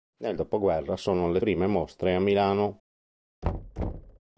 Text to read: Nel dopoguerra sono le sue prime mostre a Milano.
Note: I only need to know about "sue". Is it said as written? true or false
false